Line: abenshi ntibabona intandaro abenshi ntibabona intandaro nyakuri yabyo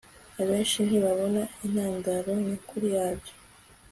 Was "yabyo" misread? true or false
false